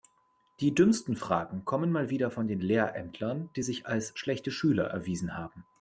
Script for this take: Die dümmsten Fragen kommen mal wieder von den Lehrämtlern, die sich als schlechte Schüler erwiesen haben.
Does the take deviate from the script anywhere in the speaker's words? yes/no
no